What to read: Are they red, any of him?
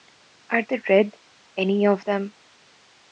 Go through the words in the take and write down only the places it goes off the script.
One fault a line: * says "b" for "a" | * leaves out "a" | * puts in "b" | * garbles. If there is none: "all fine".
* says "them" for "him"